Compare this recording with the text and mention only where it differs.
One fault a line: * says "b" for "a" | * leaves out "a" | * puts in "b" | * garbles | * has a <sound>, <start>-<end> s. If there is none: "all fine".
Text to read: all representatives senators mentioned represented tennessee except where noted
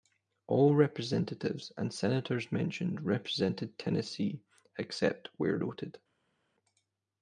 * puts in "and"